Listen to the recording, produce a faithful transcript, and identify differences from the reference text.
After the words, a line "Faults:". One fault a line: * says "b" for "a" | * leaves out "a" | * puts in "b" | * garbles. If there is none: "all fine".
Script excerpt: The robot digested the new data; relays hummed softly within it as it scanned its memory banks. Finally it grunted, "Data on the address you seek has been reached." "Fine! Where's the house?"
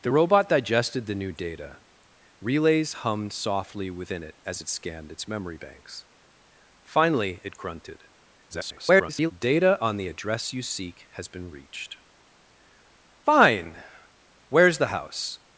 The robot digested the new data; relays hummed softly within it as it scanned its memory banks. Finally it grunted, [garbled] "Data on the address you seek has been reached." "Fine! Where's the house?"
Faults:
* garbles